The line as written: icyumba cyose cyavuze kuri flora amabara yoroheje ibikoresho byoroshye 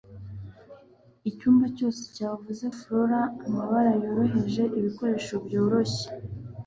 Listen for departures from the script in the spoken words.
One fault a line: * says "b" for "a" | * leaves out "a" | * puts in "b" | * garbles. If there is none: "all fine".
* leaves out "kuri"